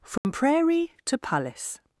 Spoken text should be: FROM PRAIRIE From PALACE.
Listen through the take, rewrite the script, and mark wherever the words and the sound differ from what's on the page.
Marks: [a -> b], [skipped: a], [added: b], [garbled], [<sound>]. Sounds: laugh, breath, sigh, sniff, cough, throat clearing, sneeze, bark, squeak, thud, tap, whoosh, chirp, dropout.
FROM [dropout] PRAIRIE [From -> TO] PALACE.